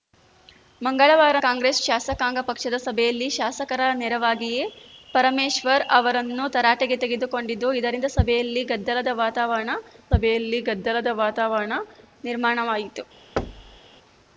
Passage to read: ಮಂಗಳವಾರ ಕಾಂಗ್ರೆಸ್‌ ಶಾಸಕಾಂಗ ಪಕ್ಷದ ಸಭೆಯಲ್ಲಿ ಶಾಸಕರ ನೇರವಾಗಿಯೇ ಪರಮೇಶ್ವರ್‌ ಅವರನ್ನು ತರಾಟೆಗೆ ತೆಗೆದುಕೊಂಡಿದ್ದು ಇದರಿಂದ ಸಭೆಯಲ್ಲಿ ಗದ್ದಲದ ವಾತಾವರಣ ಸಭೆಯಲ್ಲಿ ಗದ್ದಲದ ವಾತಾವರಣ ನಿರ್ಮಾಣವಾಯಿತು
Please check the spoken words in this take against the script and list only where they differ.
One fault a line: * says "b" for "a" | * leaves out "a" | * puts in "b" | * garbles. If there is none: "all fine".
all fine